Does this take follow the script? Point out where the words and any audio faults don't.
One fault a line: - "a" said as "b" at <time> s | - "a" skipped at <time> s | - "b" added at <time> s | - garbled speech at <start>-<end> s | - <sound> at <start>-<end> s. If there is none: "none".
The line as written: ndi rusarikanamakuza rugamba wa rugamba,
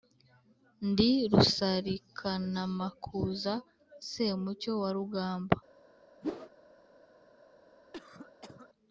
- "rugamba" said as "semucyo" at 4.1 s
- whoosh at 6.2-6.5 s
- cough at 7.9-8.7 s